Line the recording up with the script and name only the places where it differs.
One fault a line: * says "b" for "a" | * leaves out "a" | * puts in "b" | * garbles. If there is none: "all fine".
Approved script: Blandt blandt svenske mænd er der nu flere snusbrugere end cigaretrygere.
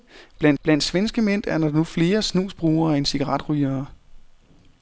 all fine